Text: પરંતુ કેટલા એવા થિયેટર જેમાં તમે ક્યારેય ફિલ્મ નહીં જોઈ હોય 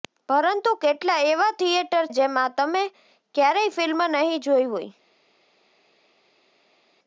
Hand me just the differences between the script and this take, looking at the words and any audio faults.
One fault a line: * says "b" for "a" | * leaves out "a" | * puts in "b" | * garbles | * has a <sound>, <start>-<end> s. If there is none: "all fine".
all fine